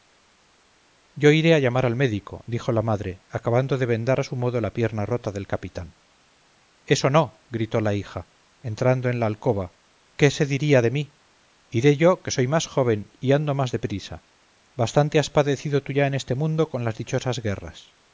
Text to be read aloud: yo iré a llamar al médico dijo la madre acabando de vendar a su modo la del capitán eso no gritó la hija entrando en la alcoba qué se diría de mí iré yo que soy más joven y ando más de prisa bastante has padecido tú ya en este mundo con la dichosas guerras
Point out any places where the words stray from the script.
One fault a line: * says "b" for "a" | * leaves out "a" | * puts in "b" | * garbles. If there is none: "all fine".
* puts in "pierna rota"
* says "las" for "la"